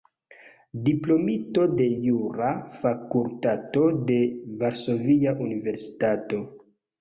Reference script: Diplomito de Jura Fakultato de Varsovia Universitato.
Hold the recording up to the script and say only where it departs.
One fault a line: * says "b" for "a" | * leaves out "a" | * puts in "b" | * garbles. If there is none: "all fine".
all fine